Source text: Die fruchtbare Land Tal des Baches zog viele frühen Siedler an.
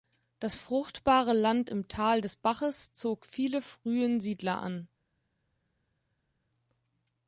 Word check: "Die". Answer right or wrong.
wrong